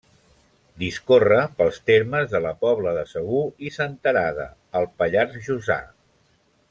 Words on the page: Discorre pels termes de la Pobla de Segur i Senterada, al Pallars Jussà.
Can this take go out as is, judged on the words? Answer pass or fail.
pass